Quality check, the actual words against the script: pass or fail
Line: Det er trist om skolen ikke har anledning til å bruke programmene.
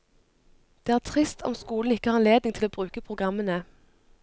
pass